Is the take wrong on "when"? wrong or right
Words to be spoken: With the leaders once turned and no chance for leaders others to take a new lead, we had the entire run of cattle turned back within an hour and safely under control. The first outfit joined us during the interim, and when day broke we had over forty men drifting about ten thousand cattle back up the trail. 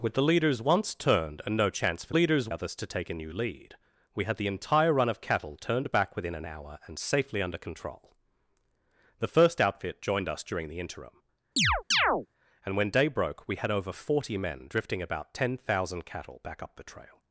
right